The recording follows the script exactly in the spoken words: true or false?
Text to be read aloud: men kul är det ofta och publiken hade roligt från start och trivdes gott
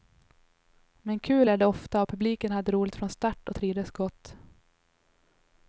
true